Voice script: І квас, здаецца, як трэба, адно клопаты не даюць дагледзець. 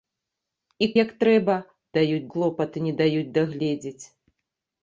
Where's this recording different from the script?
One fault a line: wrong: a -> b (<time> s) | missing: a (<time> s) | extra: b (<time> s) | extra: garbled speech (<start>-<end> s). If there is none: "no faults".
missing: квас здаецца (0.8 s)
wrong: адно -> даюць (2.0 s)